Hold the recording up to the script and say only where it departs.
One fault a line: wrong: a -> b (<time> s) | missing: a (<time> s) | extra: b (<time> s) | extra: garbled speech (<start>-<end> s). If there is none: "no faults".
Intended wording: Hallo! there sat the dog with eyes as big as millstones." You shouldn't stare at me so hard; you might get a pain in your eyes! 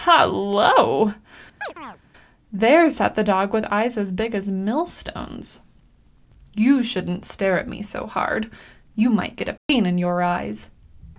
no faults